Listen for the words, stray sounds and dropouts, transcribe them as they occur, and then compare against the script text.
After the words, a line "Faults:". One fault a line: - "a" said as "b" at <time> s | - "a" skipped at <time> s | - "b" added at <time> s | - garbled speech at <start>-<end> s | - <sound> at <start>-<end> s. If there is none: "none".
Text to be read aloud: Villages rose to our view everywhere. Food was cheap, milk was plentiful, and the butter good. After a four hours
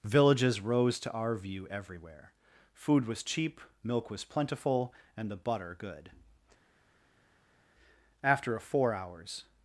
Villages rose to our view everywhere. Food was cheap, milk was plentiful, and the butter good. After a four hours
Faults:
none